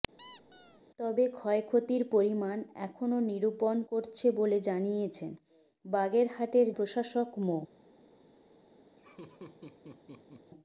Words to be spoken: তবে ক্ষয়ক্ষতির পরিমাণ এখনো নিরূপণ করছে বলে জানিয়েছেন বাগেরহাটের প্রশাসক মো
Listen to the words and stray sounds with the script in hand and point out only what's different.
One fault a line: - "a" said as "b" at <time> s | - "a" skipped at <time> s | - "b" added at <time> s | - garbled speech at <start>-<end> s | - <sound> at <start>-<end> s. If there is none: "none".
- squeak at 0.2-0.8 s
- laugh at 9.0-10.5 s